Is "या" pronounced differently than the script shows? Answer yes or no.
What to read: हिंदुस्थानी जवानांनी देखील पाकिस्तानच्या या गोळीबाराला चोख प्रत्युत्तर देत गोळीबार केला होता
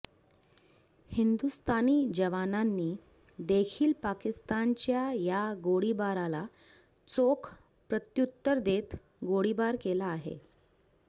no